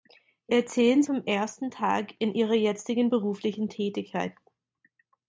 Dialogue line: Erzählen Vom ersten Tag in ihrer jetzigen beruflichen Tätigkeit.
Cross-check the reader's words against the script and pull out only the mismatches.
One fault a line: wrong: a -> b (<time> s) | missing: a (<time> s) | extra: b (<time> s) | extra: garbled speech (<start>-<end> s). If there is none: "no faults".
no faults